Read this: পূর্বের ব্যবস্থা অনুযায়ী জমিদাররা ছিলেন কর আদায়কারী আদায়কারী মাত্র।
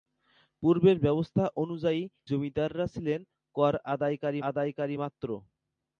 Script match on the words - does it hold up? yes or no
yes